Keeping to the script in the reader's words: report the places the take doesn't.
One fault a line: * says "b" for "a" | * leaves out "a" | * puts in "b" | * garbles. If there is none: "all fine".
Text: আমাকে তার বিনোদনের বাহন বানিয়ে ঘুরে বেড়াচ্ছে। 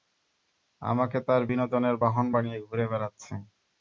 all fine